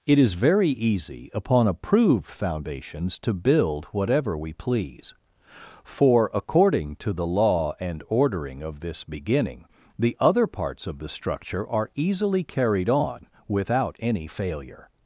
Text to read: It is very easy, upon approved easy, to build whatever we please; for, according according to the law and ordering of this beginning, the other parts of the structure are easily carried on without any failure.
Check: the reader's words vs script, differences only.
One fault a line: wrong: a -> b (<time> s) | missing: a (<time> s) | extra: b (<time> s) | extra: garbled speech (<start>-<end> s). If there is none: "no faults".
wrong: easy -> foundations (2.3 s)
missing: according (7.0 s)